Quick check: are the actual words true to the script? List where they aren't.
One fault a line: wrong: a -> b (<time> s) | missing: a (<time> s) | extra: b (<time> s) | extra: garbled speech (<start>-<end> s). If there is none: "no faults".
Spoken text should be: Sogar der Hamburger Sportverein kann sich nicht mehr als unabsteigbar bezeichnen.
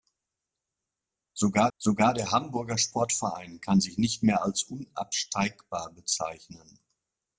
extra: sogar (1.8 s)